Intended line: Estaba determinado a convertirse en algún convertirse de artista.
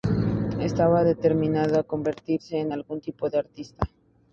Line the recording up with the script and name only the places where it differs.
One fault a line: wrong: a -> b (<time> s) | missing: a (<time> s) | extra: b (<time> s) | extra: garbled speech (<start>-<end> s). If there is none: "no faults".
wrong: convertirse -> tipo (3.0 s)